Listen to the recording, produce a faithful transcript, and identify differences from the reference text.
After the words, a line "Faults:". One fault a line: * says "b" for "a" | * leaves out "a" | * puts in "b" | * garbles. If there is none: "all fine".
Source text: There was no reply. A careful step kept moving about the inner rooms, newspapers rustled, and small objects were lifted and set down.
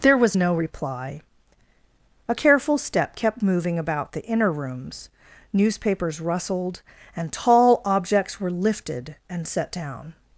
There was no reply. A careful step kept moving about the inner rooms, newspapers rustled, and tall objects were lifted and set down.
Faults:
* says "tall" for "small"